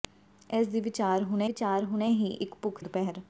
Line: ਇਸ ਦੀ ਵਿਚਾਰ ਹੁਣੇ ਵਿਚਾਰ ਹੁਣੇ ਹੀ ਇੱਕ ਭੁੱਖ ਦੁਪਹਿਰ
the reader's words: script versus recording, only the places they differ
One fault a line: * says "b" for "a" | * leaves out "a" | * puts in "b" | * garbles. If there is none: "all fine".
all fine